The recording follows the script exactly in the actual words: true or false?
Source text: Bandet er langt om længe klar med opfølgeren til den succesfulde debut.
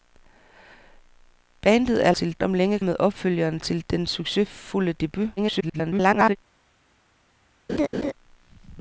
false